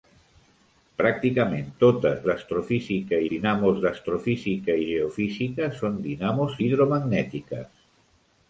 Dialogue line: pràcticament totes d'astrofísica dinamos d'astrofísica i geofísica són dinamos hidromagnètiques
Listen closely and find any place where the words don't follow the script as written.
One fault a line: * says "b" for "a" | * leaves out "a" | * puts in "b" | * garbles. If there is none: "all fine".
all fine